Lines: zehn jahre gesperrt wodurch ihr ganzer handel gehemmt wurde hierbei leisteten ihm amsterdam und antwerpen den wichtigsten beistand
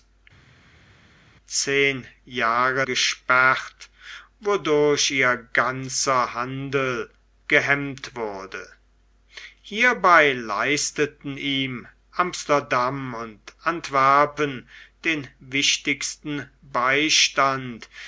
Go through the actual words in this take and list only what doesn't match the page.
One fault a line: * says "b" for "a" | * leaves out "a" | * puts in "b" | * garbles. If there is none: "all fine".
all fine